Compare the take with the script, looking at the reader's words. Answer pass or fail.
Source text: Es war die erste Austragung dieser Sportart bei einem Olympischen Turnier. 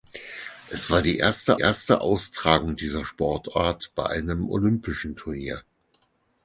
fail